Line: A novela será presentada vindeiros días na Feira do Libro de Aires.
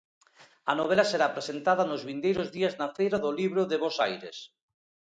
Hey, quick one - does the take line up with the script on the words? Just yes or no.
no